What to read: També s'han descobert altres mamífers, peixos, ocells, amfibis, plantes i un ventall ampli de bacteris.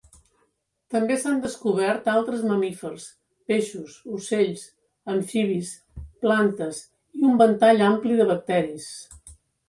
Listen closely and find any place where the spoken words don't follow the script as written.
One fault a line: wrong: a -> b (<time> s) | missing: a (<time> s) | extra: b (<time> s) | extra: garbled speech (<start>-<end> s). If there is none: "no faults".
no faults